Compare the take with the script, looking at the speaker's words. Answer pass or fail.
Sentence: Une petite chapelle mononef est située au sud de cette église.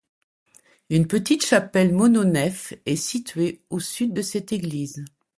pass